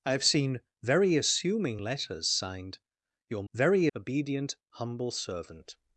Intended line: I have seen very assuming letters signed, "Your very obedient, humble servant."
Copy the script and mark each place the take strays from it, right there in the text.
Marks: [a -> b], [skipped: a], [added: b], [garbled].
I have seen very assuming letters signed, "Your very obedient, humble servant."